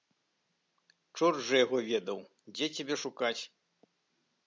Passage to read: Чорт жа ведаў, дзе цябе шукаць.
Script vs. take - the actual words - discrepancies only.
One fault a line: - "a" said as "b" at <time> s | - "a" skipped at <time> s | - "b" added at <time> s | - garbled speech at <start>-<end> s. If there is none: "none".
- "яго" added at 1.6 s